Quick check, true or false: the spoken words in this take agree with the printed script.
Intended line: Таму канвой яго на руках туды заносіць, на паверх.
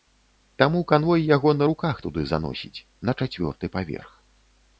false